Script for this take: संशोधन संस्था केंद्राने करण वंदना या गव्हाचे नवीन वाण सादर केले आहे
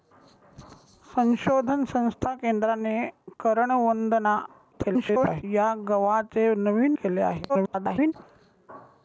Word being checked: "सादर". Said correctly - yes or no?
no